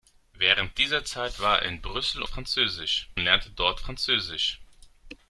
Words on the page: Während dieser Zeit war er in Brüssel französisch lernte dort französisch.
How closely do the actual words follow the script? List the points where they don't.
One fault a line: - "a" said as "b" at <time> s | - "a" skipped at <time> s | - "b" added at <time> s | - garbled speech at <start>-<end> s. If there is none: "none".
none